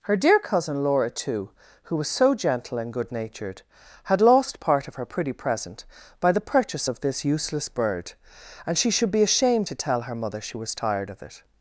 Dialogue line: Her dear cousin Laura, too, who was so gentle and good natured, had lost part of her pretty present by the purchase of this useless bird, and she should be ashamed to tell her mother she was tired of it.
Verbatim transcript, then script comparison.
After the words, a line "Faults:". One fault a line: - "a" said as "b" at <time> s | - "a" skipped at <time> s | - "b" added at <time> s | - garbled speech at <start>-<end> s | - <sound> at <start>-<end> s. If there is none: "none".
Her dear cousin Laura, too, who was so gentle and good natured, had lost part of her pretty present by the purchase of this useless bird, and she should be ashamed to tell her mother she was tired of it.
Faults:
none